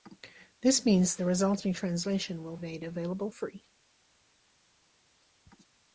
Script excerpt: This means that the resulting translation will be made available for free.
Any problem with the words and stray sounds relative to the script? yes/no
yes